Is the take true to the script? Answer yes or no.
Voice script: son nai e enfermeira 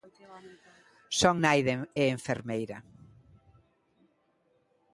yes